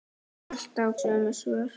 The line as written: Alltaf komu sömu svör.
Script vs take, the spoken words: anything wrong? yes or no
yes